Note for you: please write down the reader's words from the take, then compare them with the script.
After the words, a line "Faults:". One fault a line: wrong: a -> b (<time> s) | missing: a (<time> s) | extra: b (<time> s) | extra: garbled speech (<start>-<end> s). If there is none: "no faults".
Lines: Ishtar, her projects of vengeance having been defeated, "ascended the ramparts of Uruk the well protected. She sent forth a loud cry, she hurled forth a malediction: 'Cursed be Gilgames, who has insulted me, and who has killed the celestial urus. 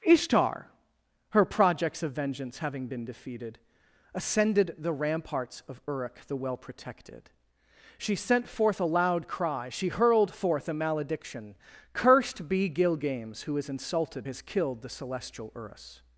Ishtar, her projects of vengeance having been defeated, "ascended the ramparts of Uruk the well protected. She sent forth a loud cry, she hurled forth a malediction: 'Cursed be Gilgames, who has insulted has killed the celestial urus.
Faults:
missing: me and who (14.3 s)